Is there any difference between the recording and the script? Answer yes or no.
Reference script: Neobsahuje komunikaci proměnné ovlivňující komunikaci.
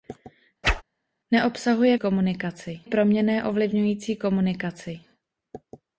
no